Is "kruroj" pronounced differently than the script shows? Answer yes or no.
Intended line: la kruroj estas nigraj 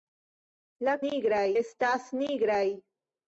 yes